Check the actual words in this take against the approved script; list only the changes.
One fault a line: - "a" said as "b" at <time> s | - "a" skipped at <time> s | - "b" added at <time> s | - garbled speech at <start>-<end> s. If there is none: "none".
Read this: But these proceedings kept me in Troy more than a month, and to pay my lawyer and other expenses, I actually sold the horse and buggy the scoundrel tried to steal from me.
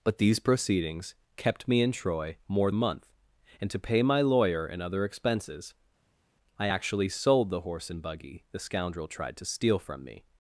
- "than" skipped at 2.7 s